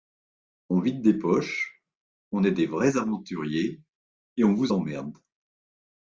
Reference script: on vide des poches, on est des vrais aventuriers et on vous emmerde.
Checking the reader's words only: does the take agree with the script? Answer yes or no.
yes